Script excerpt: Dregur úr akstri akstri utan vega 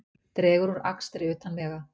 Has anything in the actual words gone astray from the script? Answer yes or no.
yes